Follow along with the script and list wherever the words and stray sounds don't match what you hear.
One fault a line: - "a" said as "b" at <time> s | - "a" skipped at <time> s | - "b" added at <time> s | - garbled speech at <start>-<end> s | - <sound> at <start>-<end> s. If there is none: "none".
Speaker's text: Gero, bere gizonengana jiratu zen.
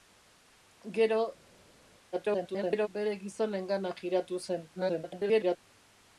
- garbled speech at 2.1-2.9 s
- garbled speech at 4.8-5.6 s